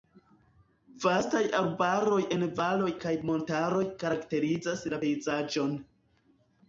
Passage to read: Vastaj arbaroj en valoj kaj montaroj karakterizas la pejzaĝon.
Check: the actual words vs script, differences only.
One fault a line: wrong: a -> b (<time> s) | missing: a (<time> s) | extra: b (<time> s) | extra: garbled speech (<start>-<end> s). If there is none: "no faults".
no faults